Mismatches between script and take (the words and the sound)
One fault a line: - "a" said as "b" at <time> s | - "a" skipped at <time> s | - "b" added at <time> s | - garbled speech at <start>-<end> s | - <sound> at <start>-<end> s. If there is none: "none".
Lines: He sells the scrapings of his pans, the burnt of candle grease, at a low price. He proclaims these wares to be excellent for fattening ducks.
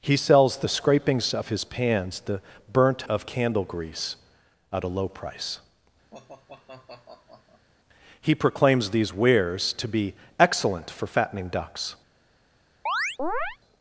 - sigh at 6.1-7.7 s
- chirp at 12.9-13.6 s